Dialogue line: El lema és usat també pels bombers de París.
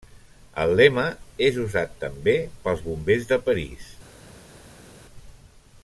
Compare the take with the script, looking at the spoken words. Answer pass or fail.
pass